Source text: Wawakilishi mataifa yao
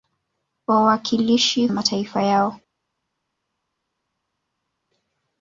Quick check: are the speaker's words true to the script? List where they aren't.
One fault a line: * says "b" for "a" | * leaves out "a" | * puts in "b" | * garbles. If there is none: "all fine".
all fine